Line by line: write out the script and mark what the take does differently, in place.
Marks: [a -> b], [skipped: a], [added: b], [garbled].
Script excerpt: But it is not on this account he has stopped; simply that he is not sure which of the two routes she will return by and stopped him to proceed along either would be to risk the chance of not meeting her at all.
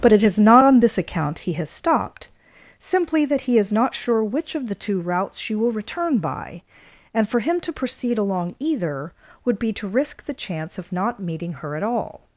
But it is not on this account he has stopped; simply that he is not sure which of the two routes she will return by and [stopped -> for] him to proceed along either would be to risk the chance of not meeting her at all.